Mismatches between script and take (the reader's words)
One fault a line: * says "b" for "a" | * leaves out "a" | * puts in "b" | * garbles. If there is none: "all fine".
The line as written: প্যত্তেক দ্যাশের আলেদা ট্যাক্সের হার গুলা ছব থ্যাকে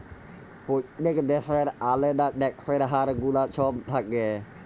all fine